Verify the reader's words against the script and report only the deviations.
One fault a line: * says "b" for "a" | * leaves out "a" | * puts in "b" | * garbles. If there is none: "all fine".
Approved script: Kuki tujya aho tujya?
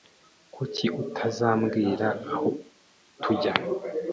* says "utazambwira" for "tujya"